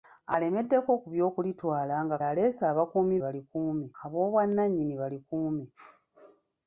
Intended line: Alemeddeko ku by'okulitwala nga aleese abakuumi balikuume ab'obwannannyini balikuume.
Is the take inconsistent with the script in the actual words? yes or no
no